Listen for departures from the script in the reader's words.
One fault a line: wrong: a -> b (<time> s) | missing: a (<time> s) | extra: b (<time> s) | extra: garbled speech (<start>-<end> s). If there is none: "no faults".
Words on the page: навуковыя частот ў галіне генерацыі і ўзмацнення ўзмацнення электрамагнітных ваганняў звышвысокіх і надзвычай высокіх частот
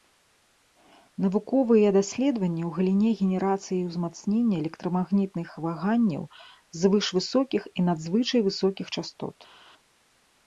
wrong: частот -> даследаванні (2.0 s)
missing: ўзмацнення (4.5 s)